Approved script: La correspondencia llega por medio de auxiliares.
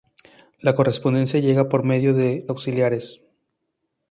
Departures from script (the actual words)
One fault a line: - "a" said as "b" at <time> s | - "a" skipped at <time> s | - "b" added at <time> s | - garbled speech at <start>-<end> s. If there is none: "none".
none